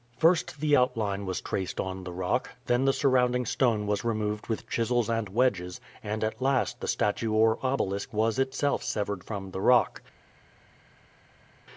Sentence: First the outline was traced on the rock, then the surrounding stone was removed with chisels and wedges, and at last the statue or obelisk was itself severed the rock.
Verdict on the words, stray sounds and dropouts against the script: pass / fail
fail